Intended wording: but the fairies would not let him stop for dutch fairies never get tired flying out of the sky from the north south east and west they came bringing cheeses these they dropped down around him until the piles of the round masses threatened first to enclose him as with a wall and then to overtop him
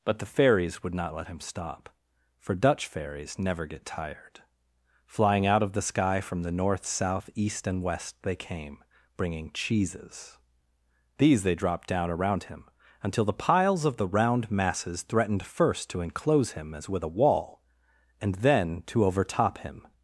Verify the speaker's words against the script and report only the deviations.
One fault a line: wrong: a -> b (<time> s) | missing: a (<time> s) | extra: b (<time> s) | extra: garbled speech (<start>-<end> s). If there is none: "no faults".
no faults